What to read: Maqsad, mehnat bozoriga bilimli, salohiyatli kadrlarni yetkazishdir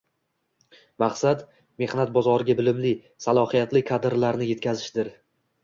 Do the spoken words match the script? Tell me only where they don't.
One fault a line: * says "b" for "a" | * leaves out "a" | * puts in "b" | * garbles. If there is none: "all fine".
all fine